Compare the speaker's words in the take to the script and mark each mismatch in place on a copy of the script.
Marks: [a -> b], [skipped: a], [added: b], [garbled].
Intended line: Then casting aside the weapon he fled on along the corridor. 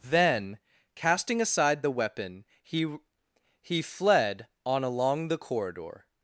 Then casting aside the weapon he [added: he] fled on along the corridor.